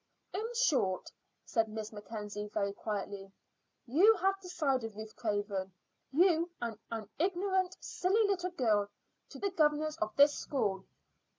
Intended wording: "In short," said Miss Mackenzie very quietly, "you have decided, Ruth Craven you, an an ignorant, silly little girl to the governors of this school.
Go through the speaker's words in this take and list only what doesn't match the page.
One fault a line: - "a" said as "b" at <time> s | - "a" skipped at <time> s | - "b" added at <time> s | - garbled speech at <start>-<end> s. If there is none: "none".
none